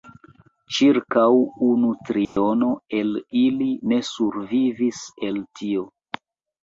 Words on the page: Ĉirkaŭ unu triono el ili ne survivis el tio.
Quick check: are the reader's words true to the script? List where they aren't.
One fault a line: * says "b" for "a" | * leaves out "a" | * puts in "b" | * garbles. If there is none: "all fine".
all fine